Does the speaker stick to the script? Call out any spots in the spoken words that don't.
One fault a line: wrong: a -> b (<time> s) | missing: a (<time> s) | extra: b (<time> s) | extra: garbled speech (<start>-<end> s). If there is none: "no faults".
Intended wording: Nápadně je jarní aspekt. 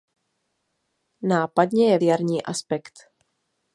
no faults